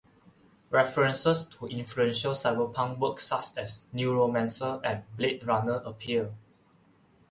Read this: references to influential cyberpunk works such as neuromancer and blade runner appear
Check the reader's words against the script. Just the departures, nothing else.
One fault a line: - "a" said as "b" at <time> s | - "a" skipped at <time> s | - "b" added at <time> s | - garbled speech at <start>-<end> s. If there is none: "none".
none